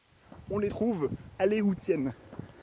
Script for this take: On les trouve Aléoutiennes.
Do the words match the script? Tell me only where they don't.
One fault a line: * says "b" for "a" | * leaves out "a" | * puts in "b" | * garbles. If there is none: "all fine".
all fine